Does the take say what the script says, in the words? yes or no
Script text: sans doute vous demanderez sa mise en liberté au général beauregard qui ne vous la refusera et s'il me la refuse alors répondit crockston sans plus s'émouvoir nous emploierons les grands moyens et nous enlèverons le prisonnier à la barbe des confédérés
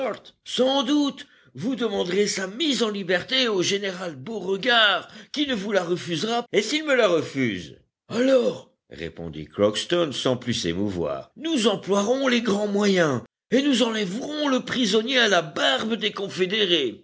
yes